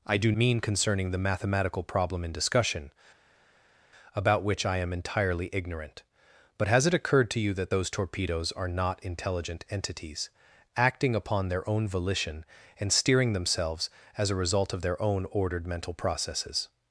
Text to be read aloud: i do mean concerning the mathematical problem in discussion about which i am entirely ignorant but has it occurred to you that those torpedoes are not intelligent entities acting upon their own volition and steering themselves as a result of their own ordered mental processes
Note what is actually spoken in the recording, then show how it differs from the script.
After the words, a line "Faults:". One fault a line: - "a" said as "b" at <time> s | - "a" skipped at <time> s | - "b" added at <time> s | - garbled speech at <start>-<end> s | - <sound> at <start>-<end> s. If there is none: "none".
i do mean concerning the mathematical problem in discussion about which i am entirely ignorant but has it occurred to you that those torpedoes are not intelligent entities acting upon their own volition and steering themselves as a result of their own ordered mental processes
Faults:
none